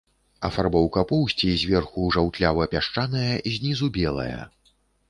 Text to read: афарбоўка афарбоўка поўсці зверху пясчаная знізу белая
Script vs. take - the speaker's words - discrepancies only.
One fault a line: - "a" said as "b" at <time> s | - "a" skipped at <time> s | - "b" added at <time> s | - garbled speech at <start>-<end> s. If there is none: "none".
- "афарбоўка" skipped at 1.0 s
- "жаўтлява" added at 2.2 s